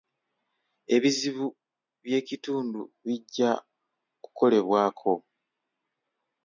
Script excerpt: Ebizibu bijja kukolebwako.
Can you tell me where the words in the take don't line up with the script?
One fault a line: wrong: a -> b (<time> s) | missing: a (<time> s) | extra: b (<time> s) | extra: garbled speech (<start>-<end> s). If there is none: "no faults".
extra: by'ekitundu (2.0 s)